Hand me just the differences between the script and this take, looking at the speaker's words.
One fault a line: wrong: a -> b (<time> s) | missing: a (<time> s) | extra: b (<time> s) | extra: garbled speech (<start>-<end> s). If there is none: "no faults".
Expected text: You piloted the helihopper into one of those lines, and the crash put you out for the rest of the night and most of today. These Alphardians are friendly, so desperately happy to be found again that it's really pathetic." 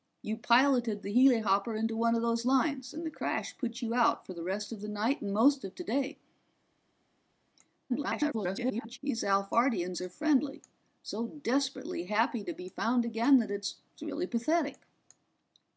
extra: garbled speech (7.9-9.0 s)